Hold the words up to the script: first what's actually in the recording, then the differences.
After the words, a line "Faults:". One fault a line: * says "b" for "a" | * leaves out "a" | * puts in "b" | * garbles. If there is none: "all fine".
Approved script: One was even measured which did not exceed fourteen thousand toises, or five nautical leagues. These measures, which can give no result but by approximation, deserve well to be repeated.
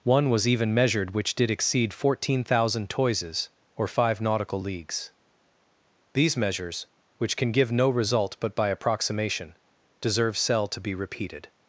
One was even measured which did exceed fourteen thousand toises, or five nautical leagues. These measures, which can give no result but by approximation, deserve cell to be repeated.
Faults:
* leaves out "not"
* says "cell" for "well"